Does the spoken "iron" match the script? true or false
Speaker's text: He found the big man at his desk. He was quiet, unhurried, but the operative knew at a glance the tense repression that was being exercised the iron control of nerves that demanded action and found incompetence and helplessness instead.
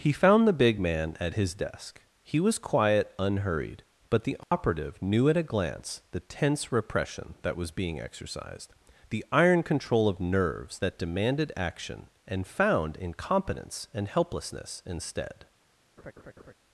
true